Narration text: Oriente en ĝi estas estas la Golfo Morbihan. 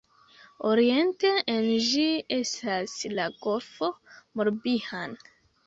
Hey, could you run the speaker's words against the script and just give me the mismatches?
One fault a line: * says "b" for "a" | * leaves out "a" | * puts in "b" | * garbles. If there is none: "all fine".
* leaves out "estas"